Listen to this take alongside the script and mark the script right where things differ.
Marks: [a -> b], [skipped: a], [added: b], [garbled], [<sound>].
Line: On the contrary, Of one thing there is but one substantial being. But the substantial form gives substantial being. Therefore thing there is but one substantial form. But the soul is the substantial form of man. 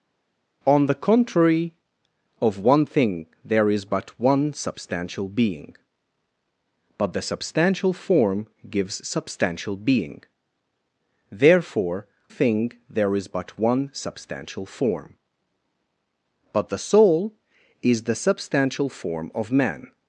On the contrary, Of one thing there is but one substantial being. But the substantial form gives substantial being. Therefore thing there is but one substantial form. But the soul is the substantial form of man.